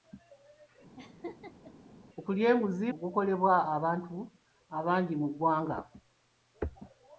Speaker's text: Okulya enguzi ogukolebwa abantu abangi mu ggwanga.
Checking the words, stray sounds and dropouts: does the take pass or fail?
fail